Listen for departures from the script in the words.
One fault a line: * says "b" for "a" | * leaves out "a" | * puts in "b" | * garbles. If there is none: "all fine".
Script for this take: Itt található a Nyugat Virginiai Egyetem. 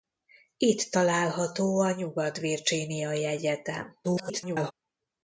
* garbles